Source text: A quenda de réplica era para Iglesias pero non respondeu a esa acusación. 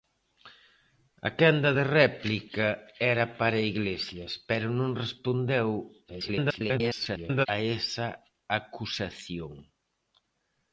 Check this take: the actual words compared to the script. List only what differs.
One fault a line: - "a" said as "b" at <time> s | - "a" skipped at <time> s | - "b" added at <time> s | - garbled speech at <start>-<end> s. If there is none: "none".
- garbled speech at 6.1-7.5 s